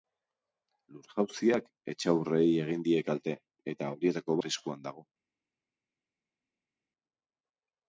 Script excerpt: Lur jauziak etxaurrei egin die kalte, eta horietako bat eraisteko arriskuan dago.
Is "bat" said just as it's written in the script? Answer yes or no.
no